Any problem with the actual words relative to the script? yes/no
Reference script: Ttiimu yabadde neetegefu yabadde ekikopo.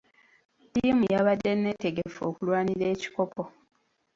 yes